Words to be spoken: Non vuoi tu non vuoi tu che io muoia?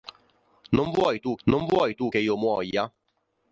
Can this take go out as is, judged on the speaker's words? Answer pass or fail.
pass